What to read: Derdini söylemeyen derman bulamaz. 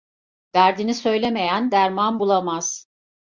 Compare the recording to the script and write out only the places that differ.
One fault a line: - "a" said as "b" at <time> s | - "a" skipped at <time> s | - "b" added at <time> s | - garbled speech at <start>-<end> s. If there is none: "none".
none